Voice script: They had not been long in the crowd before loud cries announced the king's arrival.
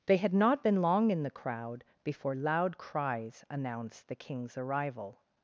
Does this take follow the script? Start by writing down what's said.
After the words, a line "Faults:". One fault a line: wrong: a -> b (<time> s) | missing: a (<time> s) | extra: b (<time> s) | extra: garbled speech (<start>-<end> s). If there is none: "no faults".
They had not been long in the crowd before loud cries announced the king's arrival.
Faults:
no faults